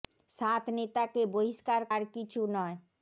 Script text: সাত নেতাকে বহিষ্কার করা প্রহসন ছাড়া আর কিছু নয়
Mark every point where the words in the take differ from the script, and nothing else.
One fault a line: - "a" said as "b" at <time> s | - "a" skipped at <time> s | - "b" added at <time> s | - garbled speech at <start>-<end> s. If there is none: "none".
- "করা প্রহসন ছাড়া" skipped at 1.8 s